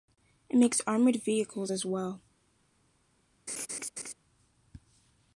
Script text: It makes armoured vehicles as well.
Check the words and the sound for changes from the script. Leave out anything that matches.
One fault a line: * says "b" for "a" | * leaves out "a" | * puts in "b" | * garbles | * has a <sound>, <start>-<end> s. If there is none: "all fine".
* has a laugh, 3.5-4.1 s